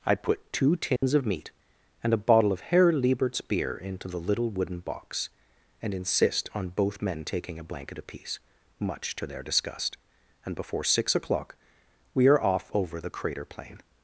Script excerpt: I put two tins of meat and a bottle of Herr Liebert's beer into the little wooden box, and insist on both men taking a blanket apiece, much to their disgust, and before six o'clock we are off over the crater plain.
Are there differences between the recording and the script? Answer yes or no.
no